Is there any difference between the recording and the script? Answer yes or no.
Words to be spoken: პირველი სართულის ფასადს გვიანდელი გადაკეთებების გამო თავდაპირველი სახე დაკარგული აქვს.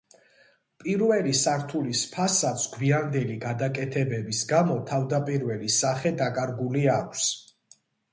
no